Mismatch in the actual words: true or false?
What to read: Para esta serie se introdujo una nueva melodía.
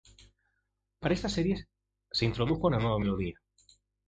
false